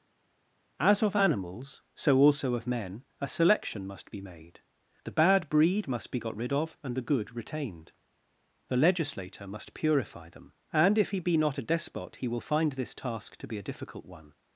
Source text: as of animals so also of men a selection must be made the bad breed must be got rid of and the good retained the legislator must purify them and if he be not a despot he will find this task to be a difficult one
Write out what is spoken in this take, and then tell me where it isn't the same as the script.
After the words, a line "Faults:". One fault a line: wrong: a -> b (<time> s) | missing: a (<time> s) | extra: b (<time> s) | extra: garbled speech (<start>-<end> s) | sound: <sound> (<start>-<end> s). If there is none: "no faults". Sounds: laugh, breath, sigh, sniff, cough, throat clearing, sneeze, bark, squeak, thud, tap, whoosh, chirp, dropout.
as of animals so also of men a selection must be made the bad breed must be got rid of and the good retained the legislator must purify them and if he be not a despot he will find this task to be a difficult one
Faults:
no faults